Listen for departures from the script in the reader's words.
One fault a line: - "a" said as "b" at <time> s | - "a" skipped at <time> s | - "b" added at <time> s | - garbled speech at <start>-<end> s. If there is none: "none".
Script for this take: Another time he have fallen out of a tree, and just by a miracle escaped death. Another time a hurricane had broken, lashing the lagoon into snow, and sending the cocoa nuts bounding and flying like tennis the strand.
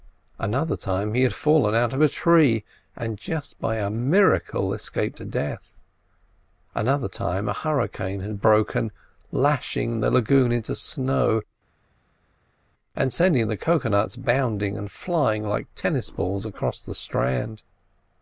- "have" said as "had" at 1.2 s
- "balls across" added at 16.1 s